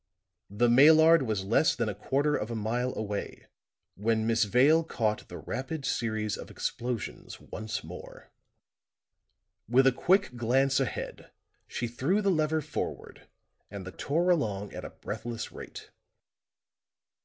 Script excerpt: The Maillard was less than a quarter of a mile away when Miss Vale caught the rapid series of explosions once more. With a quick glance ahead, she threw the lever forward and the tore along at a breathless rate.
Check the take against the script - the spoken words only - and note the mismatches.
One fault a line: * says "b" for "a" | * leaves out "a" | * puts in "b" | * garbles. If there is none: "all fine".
all fine